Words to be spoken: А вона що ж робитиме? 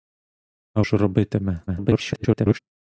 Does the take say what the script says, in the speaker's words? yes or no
no